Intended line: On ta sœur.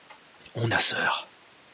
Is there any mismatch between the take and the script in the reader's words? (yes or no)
no